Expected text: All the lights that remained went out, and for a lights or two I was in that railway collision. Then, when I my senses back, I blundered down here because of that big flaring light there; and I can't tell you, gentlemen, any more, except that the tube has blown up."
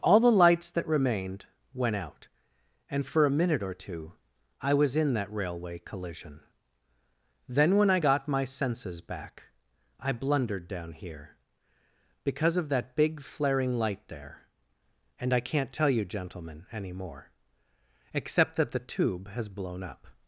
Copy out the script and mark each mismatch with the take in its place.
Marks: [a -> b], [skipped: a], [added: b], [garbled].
All the lights that remained went out, and for a [lights -> minute] or two I was in that railway collision. Then, when I [added: got] my senses back, I blundered down here because of that big flaring light there; and I can't tell you, gentlemen, any more, except that the tube has blown up."